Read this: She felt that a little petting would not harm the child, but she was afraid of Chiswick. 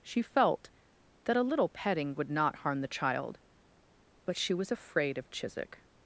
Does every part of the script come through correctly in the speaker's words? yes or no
yes